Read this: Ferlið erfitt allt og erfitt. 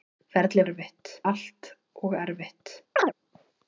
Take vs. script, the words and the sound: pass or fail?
fail